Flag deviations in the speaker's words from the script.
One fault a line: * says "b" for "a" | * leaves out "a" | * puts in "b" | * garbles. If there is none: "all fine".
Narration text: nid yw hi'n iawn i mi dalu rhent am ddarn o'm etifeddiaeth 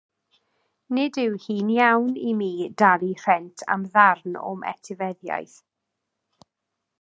all fine